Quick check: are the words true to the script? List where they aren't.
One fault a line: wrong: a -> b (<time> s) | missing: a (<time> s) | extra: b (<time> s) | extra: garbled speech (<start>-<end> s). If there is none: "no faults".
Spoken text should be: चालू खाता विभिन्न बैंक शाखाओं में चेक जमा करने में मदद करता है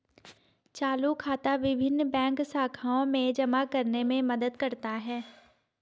missing: चेक (3.3 s)